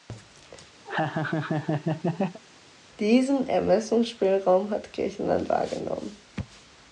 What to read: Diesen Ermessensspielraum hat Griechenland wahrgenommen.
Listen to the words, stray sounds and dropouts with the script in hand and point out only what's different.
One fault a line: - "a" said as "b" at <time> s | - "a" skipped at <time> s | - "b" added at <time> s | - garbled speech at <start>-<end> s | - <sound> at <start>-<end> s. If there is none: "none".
- laugh at 0.8-2.4 s